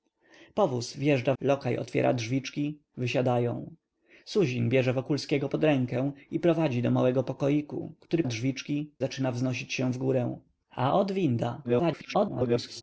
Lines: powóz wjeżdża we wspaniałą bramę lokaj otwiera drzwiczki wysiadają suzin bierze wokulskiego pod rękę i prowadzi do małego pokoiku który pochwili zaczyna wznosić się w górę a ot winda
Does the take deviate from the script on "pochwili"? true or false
true